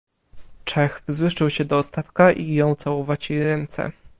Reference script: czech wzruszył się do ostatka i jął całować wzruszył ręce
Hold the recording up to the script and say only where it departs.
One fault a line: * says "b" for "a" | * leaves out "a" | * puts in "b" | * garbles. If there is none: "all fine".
* says "jej" for "wzruszył"